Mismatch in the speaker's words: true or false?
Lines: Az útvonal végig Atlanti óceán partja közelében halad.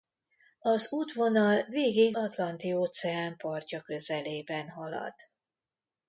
false